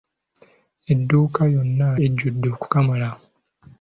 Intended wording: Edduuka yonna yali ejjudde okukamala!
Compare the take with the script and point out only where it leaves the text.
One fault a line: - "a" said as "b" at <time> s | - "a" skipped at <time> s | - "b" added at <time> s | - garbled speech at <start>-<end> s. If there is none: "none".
- "yali" skipped at 1.9 s